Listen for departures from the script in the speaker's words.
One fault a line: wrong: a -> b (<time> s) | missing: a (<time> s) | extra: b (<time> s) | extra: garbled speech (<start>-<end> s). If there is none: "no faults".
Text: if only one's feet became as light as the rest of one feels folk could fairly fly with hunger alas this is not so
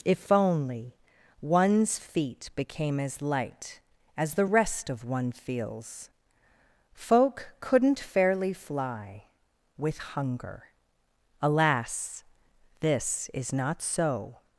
wrong: could -> couldn't (7.6 s)